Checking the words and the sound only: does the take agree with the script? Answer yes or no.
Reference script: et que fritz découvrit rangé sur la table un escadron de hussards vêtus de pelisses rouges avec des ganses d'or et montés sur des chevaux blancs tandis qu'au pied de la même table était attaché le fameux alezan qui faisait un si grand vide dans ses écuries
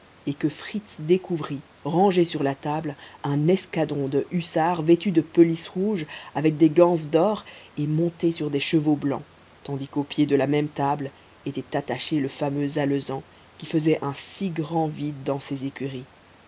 yes